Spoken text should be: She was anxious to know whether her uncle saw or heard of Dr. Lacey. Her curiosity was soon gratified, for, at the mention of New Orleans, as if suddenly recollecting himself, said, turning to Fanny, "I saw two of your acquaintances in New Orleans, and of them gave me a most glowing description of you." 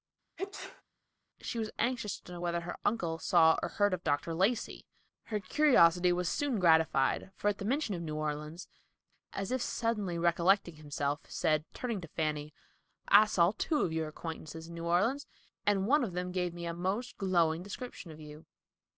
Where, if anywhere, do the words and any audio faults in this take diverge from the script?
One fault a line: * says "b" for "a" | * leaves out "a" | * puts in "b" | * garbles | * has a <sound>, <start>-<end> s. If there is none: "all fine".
* has a sneeze, 0.4-0.8 s
* puts in "one"